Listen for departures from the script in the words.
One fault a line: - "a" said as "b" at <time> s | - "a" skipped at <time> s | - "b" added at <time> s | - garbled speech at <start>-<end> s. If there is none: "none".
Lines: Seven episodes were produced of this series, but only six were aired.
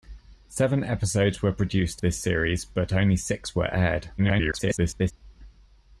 - "of" skipped at 2.0 s
- garbled speech at 4.2-5.1 s